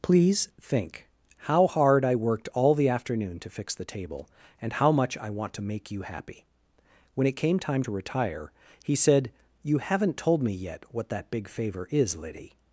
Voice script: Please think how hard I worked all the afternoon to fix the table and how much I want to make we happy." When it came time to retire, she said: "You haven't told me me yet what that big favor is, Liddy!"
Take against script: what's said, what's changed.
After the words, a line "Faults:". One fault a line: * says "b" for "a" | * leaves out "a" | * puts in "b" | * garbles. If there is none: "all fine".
Please think how hard I worked all the afternoon to fix the table and how much I want to make you happy." When it came time to retire, he said: "You haven't told me yet what that big favor is, Liddy!"
Faults:
* says "you" for "we"
* says "he" for "she"
* leaves out "me"